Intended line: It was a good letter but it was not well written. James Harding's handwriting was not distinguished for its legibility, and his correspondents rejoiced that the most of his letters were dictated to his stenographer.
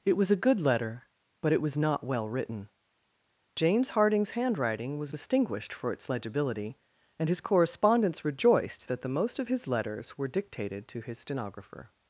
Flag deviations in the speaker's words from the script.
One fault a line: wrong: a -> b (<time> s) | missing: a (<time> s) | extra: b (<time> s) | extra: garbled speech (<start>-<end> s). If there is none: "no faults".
missing: not (5.1 s)